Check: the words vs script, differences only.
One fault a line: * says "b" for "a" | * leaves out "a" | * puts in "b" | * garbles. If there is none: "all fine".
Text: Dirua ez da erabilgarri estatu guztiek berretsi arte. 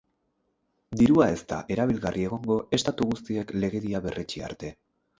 * puts in "egongo"
* puts in "legedia"